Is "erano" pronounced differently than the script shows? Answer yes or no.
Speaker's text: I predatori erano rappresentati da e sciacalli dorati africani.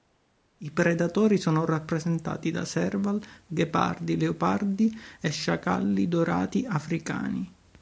yes